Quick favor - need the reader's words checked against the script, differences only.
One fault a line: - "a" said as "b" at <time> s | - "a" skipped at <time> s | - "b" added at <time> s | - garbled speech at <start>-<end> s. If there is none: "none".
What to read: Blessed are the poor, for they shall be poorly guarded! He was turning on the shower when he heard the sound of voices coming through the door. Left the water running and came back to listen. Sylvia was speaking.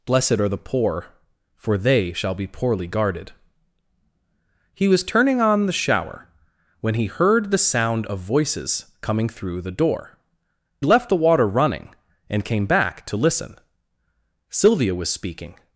none